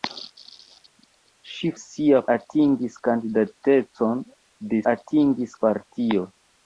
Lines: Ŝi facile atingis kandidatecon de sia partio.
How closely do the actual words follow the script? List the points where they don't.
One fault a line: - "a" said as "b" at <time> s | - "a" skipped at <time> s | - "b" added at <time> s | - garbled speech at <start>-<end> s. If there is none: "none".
- "facile" said as "sia" at 1.8 s
- "sia" said as "atingis" at 4.9 s